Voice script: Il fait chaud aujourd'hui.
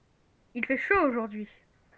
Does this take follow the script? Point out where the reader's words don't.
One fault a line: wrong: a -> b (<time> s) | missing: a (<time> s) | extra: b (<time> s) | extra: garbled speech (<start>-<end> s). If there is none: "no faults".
no faults